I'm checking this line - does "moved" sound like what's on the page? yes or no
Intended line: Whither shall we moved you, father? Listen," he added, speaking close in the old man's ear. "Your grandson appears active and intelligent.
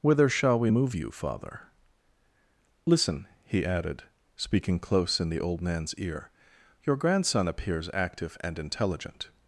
no